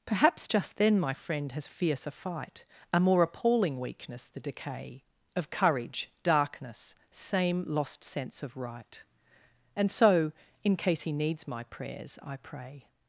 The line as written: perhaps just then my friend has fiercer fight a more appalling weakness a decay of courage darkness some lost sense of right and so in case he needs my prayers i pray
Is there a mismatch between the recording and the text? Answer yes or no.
yes